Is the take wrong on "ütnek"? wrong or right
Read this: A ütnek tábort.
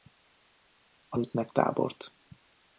right